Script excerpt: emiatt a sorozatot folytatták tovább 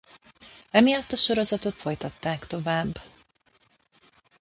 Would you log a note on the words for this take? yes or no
no